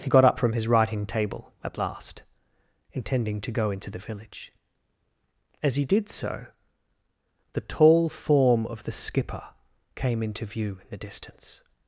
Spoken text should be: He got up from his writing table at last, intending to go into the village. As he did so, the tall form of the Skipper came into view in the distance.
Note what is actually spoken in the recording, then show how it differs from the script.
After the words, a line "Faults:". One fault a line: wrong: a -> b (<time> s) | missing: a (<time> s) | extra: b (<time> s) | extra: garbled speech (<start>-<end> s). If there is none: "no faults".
He got up from his writing table at last, intending to go into the village. As he did so, the tall form of the Skipper came into view in the distance.
Faults:
no faults